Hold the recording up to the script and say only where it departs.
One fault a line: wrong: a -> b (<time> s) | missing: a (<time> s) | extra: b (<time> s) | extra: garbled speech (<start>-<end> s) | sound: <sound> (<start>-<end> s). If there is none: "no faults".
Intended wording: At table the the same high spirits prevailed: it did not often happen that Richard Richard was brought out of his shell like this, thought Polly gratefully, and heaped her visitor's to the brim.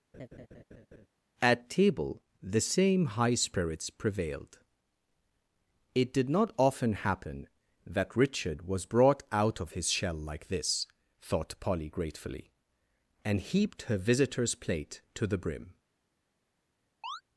sound: laugh (0.1-1.1 s)
missing: the (2.6 s)
missing: Richard (8.7 s)
extra: plate (14.5 s)
sound: chirp (17.0-17.2 s)